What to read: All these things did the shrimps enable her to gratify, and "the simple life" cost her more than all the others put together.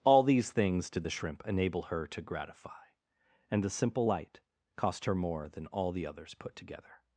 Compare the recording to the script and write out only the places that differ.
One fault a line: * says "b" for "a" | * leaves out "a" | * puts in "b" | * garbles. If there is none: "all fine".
* says "shrimp" for "shrimps"
* says "light" for "life"